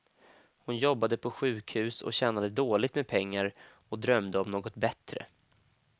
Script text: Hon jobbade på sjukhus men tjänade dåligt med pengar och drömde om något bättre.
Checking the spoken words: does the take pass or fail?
fail